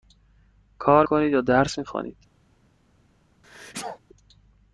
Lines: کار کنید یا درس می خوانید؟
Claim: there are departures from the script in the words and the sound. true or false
true